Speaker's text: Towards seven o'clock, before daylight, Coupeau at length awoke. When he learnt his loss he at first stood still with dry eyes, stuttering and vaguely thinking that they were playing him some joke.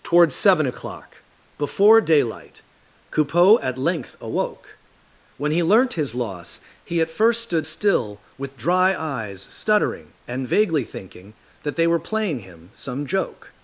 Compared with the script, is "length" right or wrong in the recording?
right